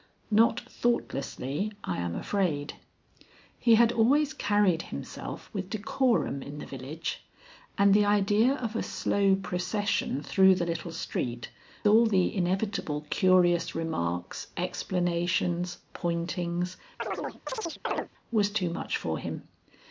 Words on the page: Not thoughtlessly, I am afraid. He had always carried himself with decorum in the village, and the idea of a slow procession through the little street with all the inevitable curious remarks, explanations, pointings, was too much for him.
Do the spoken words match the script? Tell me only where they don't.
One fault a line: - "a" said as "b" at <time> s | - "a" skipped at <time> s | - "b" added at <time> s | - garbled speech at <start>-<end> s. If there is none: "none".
- "with" skipped at 11.5 s